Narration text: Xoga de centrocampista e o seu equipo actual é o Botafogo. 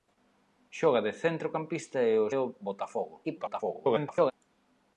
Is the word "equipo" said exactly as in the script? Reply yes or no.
no